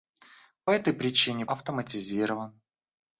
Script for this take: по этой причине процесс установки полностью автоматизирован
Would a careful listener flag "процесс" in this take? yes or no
yes